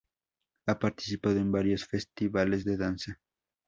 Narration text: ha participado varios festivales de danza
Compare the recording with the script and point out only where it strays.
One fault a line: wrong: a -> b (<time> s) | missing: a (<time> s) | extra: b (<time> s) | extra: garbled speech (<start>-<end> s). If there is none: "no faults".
extra: en (1.4 s)